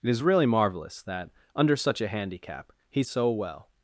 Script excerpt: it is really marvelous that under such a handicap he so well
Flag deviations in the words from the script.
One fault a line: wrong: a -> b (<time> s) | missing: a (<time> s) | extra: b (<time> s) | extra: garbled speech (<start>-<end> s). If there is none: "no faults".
no faults